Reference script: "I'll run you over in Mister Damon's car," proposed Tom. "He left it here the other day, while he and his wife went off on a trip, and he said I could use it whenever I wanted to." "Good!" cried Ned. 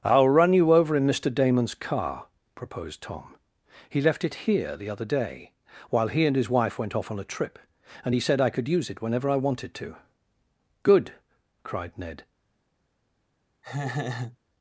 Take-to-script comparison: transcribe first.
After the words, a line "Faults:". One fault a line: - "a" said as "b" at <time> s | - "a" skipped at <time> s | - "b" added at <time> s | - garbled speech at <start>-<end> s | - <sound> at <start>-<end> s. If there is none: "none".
"I'll run you over in Mister Damon's car," proposed Tom. "He left it here the other day, while he and his wife went off on a trip, and he said I could use it whenever I wanted to." "Good!" cried Ned.
Faults:
- laugh at 13.6-14.4 s